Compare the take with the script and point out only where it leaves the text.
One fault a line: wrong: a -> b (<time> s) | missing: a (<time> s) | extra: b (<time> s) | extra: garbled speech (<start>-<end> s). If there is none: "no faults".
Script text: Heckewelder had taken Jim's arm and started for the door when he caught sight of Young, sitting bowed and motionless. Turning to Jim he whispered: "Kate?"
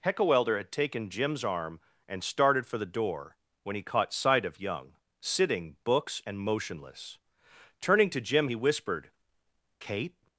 wrong: bowed -> books (5.8 s)